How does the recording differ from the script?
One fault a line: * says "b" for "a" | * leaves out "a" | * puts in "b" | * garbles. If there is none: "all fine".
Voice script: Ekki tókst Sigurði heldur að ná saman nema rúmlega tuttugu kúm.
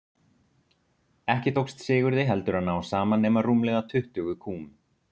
all fine